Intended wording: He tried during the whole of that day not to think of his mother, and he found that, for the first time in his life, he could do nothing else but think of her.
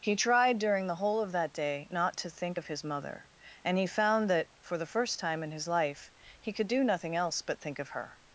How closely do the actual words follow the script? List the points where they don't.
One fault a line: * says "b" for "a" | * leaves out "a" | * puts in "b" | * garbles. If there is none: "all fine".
all fine